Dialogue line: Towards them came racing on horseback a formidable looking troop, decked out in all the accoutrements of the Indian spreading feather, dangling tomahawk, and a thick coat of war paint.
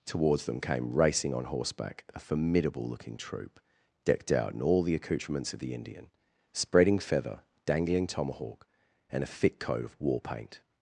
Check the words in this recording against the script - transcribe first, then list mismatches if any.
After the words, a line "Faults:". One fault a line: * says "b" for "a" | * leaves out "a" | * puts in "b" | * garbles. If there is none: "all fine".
Towards them came racing on horseback a formidable looking troop, decked out in all the accoutrements of the Indian spreading feather, dangling tomahawk, and a thick coat of war paint.
Faults:
all fine